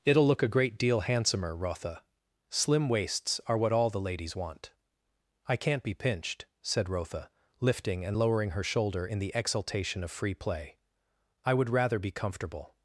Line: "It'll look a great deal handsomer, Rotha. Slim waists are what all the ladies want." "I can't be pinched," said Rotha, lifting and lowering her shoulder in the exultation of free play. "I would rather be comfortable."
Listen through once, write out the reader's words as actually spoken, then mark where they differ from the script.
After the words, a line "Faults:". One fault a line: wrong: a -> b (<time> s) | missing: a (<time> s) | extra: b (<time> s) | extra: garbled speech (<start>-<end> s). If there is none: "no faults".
"It'll look a great deal handsomer, Rotha. Slim waists are what all the ladies want." "I can't be pinched," said Rotha, lifting and lowering her shoulder in the exultation of free play. "I would rather be comfortable."
Faults:
no faults